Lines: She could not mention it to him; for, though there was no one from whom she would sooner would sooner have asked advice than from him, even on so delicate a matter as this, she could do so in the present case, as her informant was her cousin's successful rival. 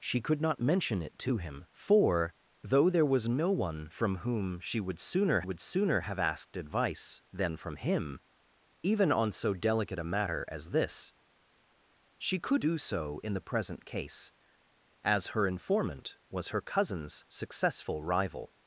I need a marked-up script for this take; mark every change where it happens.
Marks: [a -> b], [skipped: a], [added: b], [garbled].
She could not mention it to him; for, though there was no one from whom she would sooner would sooner have asked advice than from him, even on so delicate a matter as this, she could do so in the present case, as her informant was her cousin's successful rival.